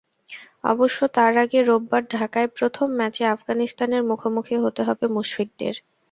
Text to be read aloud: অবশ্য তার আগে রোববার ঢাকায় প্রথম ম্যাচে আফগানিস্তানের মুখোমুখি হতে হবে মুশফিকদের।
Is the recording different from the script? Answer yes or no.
no